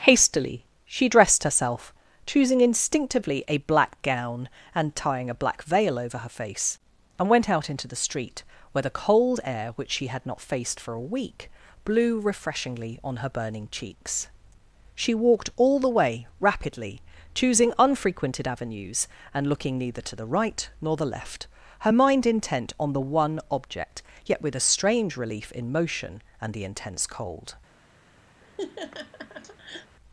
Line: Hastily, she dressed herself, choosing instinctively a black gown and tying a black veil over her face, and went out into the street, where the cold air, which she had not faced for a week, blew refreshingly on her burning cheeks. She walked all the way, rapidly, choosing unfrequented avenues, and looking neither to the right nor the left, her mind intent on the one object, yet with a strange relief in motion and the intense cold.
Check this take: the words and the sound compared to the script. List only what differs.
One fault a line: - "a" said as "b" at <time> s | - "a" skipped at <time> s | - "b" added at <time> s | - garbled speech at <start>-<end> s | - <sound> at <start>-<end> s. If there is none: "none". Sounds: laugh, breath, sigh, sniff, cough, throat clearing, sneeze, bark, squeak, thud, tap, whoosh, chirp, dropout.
- laugh at 28.4-30.0 s